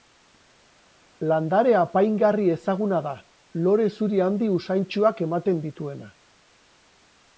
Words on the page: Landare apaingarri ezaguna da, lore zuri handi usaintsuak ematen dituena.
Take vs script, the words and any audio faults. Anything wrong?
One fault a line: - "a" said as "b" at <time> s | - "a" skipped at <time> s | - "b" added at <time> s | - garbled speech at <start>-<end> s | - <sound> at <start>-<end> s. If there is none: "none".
none